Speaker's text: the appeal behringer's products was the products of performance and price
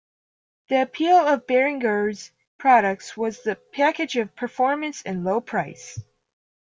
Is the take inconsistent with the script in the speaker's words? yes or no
yes